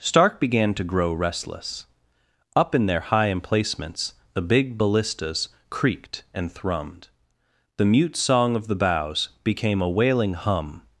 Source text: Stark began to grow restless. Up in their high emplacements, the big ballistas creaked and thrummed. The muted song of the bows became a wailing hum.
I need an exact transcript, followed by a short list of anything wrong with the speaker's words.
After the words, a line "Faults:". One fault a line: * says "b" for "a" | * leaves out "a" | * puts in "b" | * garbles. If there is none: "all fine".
Stark began to grow restless. Up in their high emplacements, the big ballistas creaked and thrummed. The mute song of the bows became a wailing hum.
Faults:
* says "mute" for "muted"